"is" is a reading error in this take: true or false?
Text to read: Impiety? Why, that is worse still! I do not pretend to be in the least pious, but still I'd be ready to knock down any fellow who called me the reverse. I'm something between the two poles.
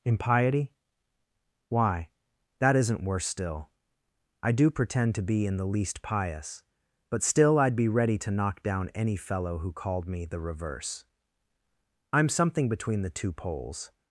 true